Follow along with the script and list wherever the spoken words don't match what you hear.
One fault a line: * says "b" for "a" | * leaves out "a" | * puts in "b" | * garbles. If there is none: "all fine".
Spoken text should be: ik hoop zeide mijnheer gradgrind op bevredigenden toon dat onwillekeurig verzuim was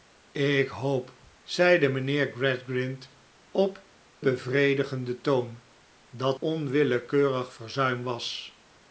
all fine